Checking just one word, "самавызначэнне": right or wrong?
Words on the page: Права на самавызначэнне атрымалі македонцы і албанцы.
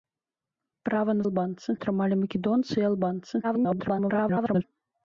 wrong